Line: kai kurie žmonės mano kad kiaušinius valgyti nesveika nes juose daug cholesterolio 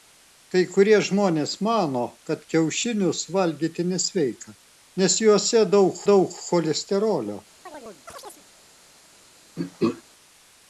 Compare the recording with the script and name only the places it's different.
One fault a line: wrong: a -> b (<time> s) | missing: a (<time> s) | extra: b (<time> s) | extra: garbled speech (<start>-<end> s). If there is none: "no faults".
extra: daug (6.1 s)